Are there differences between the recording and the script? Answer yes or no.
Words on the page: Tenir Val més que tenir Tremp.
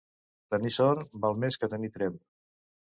yes